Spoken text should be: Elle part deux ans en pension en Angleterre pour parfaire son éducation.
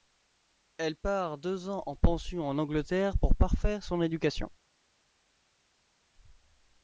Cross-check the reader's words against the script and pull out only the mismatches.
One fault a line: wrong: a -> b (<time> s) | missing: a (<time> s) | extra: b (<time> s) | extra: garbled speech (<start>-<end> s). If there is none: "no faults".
no faults